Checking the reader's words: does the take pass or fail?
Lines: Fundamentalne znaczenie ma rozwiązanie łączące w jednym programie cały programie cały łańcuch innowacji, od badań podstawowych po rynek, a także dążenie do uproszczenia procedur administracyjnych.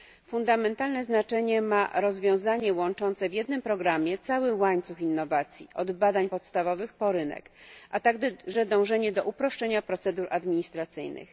fail